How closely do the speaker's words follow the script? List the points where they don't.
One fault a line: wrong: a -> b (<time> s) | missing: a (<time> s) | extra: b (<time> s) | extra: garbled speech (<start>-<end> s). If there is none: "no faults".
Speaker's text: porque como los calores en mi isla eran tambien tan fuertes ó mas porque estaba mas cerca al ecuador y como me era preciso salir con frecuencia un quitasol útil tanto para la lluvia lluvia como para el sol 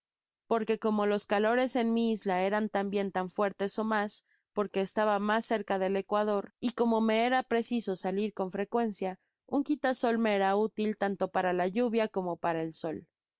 wrong: al -> del (5.8 s)
extra: me era (10.2 s)
missing: lluvia (12.1 s)